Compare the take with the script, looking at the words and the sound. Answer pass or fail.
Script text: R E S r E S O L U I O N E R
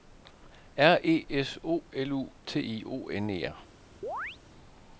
fail